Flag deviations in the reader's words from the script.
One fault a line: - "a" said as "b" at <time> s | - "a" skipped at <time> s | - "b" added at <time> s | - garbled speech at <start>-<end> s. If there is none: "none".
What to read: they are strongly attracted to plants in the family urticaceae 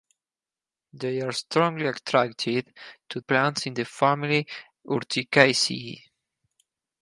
none